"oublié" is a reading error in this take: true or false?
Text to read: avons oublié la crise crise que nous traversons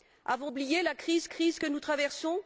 false